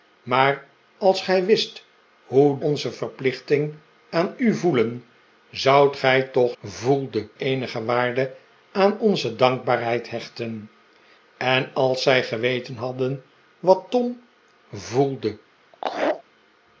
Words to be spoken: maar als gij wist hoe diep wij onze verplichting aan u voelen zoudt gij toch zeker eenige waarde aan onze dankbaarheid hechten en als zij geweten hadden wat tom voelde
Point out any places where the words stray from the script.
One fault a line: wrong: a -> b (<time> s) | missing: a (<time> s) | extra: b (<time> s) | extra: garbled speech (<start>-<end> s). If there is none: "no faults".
missing: diep wij (2.6 s)
wrong: zeker -> voelde (6.6 s)